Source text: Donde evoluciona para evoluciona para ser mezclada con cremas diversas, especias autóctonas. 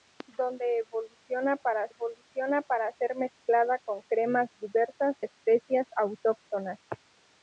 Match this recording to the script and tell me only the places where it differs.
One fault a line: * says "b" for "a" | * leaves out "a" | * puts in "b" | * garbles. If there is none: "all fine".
all fine